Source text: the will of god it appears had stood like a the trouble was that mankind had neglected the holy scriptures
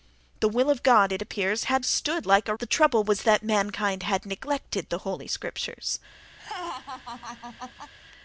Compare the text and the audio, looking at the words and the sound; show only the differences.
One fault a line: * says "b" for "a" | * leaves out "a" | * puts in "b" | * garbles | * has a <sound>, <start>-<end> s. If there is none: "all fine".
* has a laugh, 6.4-7.9 s